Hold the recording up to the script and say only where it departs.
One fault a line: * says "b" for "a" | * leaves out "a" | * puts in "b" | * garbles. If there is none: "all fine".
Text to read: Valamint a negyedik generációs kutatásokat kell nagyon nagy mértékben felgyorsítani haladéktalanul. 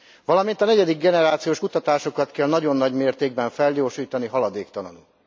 all fine